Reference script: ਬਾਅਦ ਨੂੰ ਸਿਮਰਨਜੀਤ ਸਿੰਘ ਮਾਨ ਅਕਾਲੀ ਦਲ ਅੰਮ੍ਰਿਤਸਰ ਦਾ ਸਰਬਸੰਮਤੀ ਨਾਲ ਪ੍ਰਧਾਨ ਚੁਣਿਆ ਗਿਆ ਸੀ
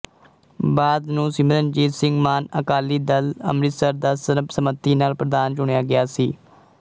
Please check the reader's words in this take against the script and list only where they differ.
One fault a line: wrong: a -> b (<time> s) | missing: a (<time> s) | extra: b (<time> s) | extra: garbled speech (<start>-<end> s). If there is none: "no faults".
no faults